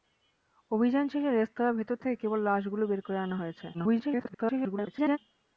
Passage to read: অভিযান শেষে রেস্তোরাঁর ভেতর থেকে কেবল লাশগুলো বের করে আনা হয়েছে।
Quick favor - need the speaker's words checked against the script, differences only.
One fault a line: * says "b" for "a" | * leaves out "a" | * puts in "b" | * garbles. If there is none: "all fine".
* garbles